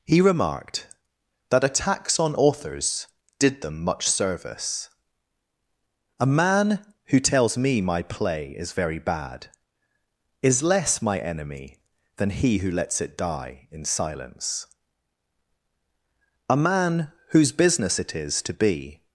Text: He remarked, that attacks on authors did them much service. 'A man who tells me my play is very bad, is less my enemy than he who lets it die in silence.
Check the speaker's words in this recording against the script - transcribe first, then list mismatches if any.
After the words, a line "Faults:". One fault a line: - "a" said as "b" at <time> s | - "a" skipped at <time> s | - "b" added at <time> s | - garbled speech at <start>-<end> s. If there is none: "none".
He remarked, that attacks on authors did them much service. 'A man who tells me my play is very bad, is less my enemy than he who lets it die in silence. A man, whose business it is to be
Faults:
- "A man whose business it is to be" added at 16.5 s